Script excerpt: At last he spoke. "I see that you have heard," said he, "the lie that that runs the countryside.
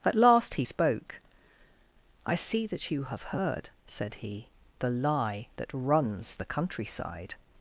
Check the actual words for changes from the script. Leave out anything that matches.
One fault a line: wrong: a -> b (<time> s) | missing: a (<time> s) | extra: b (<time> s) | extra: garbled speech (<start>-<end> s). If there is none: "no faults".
missing: that (5.7 s)